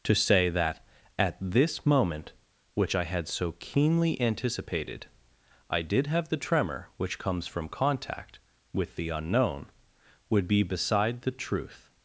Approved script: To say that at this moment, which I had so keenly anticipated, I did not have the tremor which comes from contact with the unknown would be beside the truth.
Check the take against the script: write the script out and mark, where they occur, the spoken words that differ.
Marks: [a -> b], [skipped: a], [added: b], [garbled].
To say that at this moment, which I had so keenly anticipated, I did [skipped: not] have the tremor which comes from contact with the unknown would be beside the truth.